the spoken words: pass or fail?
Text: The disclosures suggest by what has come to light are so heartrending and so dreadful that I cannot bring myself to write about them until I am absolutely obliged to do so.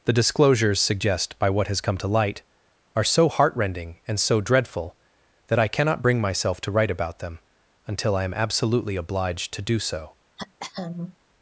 pass